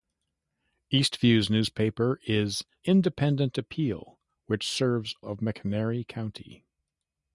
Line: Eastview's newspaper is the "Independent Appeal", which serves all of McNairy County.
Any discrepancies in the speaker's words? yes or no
yes